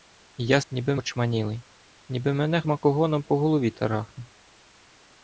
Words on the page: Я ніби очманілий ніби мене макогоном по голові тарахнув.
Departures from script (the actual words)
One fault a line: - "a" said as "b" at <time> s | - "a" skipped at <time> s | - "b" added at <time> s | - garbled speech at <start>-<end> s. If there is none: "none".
none